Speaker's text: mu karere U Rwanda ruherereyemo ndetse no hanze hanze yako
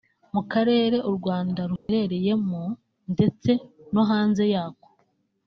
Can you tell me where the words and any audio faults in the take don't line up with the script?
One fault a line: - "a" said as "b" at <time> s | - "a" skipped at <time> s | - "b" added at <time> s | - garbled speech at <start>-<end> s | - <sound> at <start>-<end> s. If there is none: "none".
- dropout at 1.8-1.9 s
- "hanze" skipped at 4.4 s